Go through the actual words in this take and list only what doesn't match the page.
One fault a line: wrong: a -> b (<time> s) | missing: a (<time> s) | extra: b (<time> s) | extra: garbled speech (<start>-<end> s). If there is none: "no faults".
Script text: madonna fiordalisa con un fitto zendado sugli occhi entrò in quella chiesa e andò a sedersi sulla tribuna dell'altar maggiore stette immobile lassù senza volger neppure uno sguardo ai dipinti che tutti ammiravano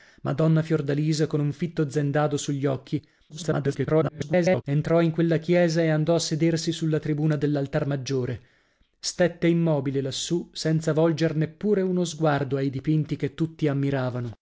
extra: garbled speech (3.3-4.6 s)